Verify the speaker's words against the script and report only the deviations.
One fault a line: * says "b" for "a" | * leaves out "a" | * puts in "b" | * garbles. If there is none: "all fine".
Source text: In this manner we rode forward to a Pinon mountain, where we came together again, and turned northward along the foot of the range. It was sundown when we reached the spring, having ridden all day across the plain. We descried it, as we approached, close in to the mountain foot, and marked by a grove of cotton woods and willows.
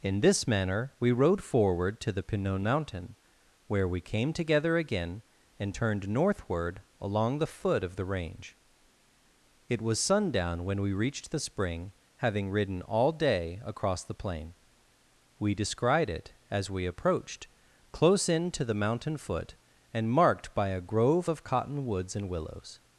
* says "the" for "a"